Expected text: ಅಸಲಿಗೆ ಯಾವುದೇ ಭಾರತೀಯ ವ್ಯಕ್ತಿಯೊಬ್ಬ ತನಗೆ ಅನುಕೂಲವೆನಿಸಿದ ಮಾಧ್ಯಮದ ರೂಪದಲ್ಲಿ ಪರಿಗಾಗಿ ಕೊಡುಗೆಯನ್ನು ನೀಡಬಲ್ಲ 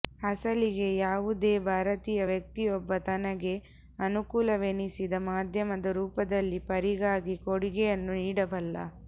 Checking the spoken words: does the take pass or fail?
pass